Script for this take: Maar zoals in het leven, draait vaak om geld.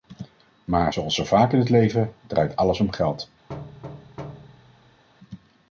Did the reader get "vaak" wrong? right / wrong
wrong